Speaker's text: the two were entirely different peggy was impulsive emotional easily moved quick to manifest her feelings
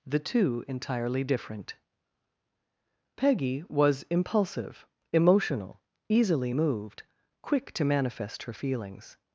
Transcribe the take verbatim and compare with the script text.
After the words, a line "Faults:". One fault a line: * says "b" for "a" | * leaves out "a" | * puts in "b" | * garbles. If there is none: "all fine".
the two entirely different peggy was impulsive emotional easily moved quick to manifest her feelings
Faults:
* leaves out "were"